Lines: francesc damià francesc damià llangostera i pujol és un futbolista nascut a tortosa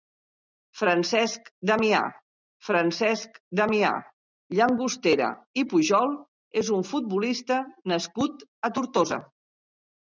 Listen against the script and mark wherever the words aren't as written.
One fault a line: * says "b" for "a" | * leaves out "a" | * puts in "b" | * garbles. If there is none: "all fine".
all fine